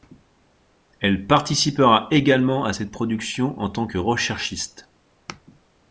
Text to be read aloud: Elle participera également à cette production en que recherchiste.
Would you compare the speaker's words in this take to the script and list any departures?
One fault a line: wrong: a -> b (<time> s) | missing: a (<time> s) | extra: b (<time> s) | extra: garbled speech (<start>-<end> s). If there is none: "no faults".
extra: tant (3.7 s)